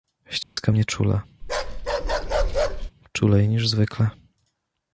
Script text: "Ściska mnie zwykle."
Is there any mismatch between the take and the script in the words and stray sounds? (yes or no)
yes